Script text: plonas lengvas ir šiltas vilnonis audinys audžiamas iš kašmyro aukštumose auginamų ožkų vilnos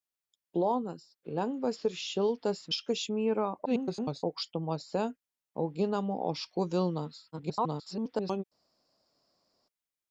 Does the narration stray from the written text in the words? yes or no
yes